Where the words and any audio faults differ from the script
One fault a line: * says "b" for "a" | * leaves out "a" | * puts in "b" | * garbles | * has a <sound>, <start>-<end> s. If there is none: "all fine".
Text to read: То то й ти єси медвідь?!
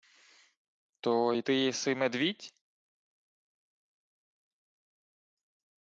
* leaves out "то"